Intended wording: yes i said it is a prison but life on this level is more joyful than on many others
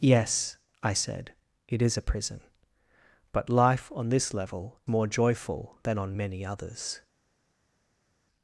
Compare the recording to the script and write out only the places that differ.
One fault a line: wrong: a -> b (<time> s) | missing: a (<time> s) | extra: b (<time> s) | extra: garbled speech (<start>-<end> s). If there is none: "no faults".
missing: is (4.8 s)